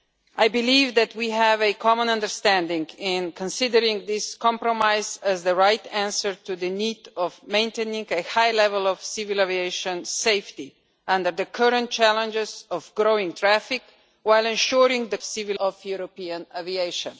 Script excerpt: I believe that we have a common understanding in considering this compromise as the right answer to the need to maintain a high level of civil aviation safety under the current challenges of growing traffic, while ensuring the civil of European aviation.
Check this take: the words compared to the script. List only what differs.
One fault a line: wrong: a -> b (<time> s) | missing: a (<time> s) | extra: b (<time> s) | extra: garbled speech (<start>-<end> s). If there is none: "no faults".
no faults